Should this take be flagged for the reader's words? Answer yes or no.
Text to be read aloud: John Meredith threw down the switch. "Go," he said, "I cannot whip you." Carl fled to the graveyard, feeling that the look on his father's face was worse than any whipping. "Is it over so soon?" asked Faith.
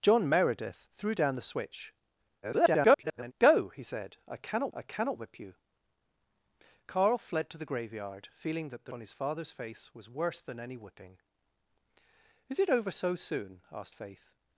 yes